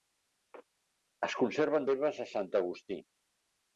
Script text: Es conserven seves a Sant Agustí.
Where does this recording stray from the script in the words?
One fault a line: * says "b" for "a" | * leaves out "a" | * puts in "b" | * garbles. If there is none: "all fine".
all fine